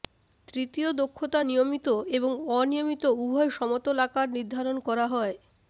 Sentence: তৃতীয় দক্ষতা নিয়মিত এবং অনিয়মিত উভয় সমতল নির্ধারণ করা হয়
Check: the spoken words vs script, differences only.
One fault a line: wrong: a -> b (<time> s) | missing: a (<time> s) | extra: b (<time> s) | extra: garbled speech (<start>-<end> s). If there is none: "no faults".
extra: আকার (4.1 s)